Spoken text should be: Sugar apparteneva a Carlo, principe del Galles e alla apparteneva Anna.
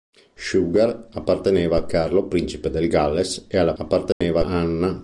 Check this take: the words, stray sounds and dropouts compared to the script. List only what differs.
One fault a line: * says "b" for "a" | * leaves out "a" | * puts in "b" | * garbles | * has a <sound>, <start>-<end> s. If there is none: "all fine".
* has a dropout, 4.1-4.2 s